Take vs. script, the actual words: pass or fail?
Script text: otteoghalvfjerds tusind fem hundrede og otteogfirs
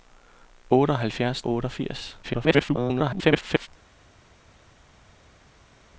fail